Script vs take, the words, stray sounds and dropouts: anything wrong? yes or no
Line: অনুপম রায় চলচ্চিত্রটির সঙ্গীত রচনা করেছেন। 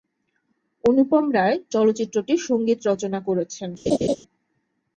yes